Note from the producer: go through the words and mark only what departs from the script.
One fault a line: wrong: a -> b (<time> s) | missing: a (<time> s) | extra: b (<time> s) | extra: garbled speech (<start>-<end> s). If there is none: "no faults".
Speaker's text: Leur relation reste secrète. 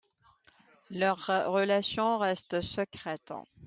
no faults